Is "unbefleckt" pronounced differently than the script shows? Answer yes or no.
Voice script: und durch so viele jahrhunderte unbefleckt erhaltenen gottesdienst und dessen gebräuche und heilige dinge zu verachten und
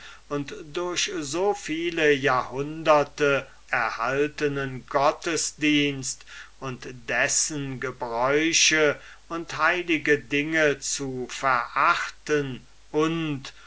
yes